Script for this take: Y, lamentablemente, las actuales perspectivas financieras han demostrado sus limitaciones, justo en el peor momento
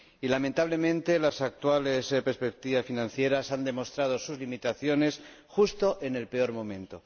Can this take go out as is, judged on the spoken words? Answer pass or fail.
pass